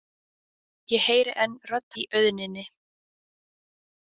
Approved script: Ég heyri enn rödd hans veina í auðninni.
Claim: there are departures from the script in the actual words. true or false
true